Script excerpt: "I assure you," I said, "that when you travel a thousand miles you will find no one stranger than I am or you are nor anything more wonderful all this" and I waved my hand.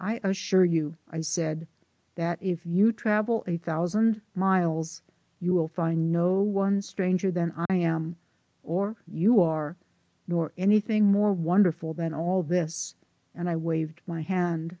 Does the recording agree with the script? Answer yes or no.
no